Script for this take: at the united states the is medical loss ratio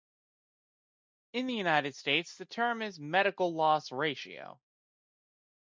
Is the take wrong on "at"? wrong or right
wrong